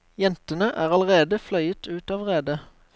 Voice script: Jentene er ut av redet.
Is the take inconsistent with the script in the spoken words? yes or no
yes